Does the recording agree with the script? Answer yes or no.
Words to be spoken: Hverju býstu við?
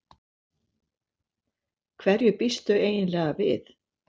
no